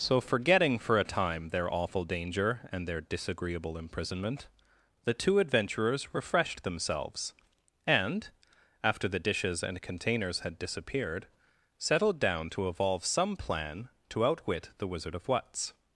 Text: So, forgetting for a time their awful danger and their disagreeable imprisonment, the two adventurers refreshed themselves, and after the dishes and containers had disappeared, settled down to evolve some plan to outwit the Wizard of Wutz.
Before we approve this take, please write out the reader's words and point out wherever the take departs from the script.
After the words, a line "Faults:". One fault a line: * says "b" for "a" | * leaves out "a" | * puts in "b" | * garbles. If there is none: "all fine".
So, forgetting for a time their awful danger and their disagreeable imprisonment, the two adventurers refreshed themselves, and after the dishes and containers had disappeared, settled down to evolve some plan to outwit the Wizard of Wutz.
Faults:
all fine